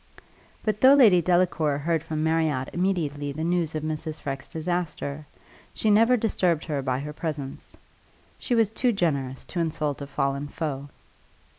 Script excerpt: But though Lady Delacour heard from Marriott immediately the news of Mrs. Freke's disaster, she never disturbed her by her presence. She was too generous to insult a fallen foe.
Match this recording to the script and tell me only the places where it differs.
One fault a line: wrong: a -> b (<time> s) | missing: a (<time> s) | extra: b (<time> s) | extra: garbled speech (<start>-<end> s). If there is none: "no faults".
no faults